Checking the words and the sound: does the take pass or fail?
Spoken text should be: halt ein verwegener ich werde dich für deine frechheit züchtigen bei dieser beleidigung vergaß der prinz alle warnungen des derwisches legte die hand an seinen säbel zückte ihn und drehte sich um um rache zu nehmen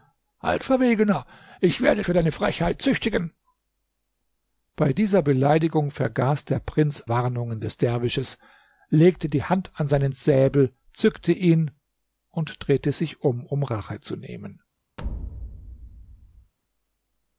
fail